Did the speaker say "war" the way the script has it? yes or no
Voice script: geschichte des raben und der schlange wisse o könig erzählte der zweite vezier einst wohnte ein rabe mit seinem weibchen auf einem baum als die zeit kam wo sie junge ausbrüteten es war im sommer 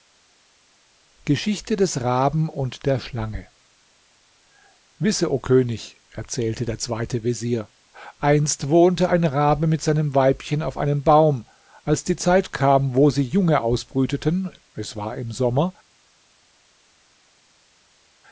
yes